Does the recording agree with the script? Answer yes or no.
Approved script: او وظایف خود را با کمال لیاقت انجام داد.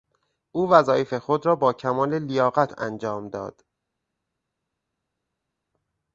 yes